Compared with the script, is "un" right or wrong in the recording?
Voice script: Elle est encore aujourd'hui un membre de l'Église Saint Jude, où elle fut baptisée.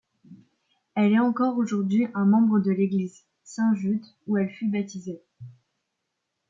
right